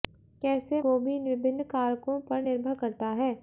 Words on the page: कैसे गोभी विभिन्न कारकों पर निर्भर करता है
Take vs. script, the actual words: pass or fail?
pass